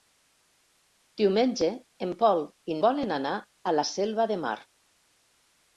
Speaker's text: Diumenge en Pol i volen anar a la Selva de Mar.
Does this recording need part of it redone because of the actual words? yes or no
no